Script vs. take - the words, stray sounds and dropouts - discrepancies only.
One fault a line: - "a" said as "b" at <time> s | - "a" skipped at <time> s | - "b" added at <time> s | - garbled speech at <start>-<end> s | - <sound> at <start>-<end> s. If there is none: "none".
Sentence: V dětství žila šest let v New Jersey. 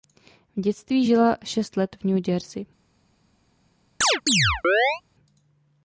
- chirp at 4.0-5.0 s